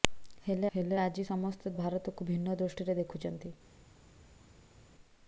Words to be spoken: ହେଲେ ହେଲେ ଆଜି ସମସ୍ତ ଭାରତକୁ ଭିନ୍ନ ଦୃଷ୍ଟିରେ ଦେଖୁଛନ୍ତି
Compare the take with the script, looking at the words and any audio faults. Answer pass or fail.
pass